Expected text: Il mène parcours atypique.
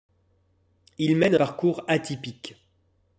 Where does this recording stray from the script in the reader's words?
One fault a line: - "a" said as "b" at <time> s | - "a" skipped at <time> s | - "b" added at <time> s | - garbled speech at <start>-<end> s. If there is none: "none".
none